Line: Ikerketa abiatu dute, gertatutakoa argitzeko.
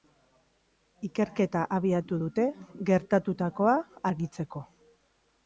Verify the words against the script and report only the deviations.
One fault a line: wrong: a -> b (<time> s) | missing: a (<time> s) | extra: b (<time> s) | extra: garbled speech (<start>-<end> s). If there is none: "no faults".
no faults